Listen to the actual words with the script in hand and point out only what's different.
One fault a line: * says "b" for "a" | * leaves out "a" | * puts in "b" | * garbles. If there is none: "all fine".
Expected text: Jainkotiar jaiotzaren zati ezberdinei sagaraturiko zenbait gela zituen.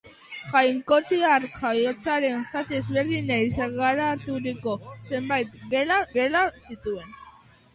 * puts in "gela"